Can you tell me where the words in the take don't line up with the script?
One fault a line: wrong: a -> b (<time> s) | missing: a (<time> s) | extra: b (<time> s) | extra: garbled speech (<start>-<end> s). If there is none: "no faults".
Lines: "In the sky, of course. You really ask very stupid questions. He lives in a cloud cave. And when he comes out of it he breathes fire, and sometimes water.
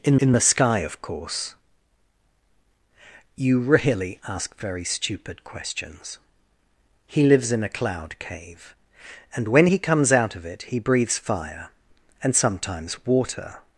extra: in (0.2 s)